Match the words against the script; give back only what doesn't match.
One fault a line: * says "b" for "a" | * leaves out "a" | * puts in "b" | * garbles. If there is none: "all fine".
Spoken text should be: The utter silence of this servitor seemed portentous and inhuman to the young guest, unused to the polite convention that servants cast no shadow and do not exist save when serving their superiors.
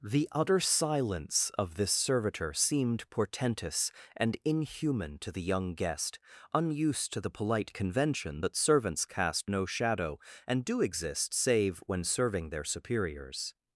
* leaves out "not"